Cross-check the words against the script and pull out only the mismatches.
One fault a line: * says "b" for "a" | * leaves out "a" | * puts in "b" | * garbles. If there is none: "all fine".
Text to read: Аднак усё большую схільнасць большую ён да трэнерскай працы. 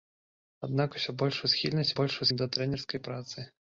all fine